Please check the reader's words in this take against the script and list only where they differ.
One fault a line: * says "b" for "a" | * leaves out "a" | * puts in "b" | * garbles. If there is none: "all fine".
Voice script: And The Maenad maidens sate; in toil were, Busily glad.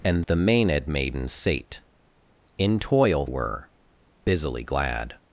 all fine